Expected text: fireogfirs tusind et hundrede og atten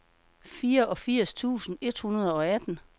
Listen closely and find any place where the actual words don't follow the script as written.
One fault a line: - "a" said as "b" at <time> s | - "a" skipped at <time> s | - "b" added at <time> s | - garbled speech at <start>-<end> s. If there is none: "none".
none